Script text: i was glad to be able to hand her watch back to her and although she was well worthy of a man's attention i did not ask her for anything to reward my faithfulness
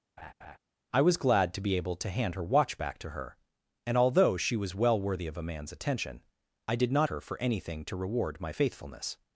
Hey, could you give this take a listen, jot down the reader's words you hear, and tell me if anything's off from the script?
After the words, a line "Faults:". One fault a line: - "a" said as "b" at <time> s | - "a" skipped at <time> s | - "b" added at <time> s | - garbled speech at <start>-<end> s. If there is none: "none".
i was glad to be able to hand her watch back to her and although she was well worthy of a man's attention i did not her for anything to reward my faithfulness
Faults:
- "ask" skipped at 7.1 s